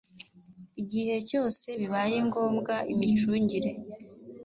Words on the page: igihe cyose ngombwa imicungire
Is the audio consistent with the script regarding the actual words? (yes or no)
no